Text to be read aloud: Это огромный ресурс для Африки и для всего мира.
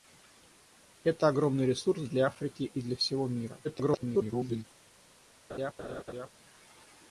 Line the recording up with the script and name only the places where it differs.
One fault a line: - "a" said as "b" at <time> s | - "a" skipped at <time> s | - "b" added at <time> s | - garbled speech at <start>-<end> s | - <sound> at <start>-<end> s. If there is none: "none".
- garbled speech at 3.6-4.6 s
- laugh at 5.5-6.3 s